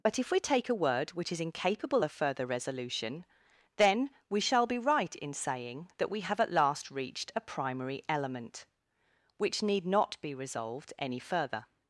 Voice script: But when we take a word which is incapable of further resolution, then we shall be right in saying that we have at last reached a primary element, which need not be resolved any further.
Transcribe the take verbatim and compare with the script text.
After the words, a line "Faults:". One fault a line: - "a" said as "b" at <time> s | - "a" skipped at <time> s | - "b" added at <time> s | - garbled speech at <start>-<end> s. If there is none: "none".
But if we take a word which is incapable of further resolution, then we shall be right in saying that we have at last reached a primary element, which need not be resolved any further.
Faults:
- "when" said as "if" at 0.2 s